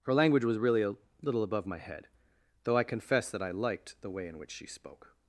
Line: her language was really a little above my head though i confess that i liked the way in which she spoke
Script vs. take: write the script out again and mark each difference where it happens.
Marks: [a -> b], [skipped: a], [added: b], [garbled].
her language was really a little above my head though i confess that i liked the way in which she spoke